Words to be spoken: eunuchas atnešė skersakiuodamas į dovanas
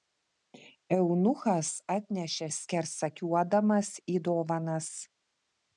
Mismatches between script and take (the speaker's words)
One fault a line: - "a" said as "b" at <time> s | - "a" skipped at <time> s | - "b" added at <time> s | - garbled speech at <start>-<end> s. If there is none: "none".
none